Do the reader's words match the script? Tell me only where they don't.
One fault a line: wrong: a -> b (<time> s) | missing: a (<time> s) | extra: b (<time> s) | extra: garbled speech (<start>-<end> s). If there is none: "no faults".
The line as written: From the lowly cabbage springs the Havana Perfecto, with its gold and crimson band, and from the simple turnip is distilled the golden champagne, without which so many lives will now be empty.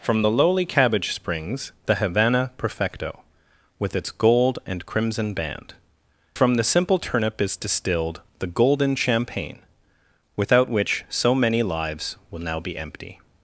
missing: and (5.7 s)